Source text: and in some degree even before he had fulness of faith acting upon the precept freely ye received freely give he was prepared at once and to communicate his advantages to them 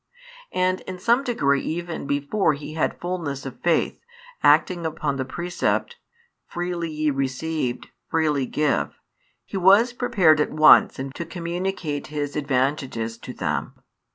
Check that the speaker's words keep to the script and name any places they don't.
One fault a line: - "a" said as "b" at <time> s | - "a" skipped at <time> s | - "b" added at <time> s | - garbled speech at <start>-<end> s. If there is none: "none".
none